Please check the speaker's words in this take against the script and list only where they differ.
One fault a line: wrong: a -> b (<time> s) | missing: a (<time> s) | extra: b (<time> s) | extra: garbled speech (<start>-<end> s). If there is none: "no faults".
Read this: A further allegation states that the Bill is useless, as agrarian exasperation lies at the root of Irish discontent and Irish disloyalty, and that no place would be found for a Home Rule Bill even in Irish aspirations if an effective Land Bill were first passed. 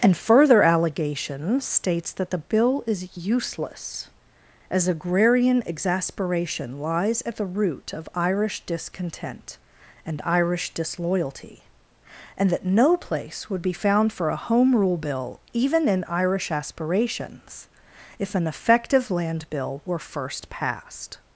wrong: A -> And (0.0 s)